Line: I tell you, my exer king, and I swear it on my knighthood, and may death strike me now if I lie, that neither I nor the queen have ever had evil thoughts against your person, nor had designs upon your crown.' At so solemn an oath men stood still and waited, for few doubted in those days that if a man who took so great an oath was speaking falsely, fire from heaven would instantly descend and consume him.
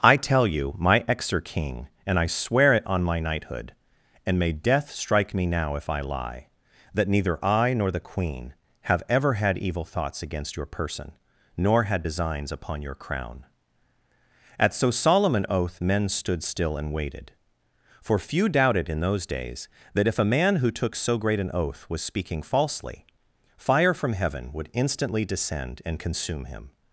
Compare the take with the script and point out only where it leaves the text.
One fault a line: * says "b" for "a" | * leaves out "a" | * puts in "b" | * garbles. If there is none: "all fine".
all fine